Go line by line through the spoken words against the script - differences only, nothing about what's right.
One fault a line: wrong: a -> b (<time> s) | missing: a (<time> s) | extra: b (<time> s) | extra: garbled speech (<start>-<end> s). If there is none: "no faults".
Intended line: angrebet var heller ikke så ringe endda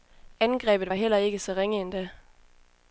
no faults